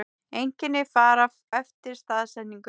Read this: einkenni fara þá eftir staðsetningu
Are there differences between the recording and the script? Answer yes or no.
yes